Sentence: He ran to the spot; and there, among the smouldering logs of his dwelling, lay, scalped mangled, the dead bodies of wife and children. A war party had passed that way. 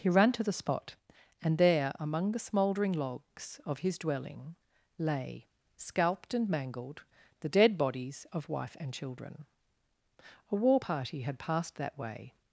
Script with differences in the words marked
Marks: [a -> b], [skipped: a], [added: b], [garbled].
He ran to the spot; and there, among the smouldering logs of his dwelling, lay, scalped [added: and] mangled, the dead bodies of wife and children. A war party had passed that way.